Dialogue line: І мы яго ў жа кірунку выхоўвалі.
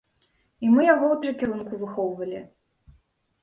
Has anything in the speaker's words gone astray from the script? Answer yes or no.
no